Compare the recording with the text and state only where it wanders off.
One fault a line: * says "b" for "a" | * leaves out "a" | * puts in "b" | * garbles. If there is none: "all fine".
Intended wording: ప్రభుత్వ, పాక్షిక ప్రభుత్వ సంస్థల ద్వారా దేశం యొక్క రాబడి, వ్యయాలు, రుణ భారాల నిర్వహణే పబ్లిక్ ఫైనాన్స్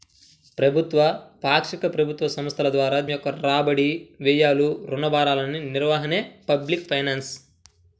* leaves out "దేశం"